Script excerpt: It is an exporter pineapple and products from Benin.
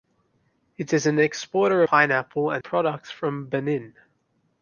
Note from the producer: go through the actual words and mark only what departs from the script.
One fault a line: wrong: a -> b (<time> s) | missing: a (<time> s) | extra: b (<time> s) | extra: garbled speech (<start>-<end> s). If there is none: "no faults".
no faults